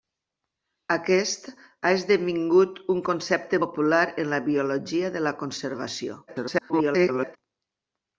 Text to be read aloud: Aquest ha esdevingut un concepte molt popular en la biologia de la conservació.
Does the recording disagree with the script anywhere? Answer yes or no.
yes